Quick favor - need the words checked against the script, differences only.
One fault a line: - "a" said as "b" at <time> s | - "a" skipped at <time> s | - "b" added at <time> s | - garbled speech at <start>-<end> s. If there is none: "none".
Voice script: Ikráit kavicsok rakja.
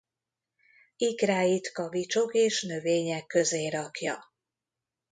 - "és növények közé" added at 2.3 s